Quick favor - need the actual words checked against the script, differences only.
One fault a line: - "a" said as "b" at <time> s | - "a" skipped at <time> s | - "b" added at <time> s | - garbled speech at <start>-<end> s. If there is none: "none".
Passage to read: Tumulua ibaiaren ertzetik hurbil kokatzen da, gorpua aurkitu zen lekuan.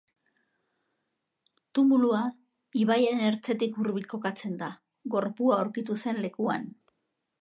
none